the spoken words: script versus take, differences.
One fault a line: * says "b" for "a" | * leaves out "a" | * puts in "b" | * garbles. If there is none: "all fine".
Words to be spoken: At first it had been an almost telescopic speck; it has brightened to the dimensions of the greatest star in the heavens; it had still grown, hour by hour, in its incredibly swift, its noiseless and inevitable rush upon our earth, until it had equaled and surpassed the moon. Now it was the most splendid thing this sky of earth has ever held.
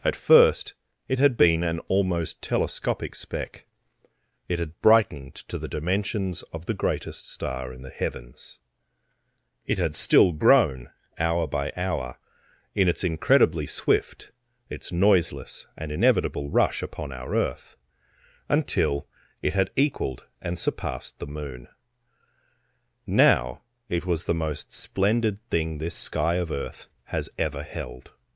* says "had" for "has"